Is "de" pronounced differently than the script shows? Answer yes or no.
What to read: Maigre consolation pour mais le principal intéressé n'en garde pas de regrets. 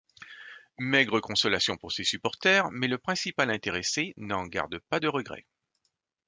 no